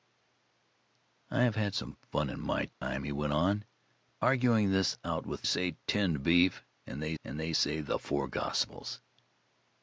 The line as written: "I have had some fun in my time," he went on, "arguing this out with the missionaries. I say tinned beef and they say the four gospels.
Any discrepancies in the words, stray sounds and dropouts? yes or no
yes